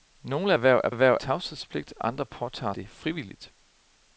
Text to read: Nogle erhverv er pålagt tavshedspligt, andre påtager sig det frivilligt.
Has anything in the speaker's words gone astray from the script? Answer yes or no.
yes